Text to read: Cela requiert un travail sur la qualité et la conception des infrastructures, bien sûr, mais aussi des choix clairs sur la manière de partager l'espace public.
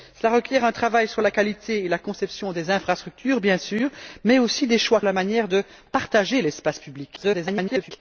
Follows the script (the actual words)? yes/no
no